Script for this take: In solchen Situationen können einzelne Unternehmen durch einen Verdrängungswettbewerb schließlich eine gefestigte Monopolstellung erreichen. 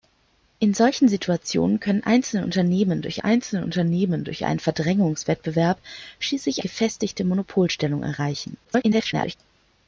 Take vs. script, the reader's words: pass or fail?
fail